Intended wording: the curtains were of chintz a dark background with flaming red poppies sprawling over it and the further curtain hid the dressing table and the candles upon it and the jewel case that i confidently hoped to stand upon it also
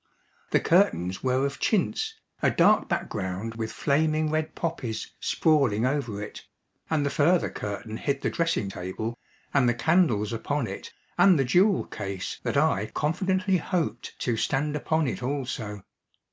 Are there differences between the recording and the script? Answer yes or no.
no